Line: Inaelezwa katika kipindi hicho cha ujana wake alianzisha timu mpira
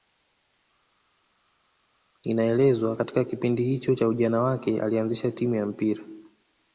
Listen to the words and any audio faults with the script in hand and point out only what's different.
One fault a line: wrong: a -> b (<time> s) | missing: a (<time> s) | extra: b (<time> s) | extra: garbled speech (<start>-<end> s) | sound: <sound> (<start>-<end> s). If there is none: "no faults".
extra: ya (5.5 s)